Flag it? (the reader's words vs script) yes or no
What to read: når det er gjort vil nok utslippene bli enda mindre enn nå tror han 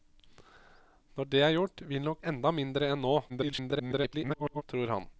yes